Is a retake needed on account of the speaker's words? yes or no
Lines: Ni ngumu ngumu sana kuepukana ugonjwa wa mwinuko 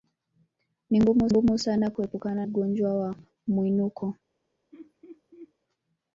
no